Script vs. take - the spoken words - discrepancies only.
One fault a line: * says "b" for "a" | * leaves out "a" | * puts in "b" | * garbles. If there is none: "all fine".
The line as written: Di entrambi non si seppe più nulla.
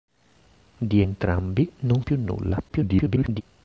* leaves out "si seppe"
* garbles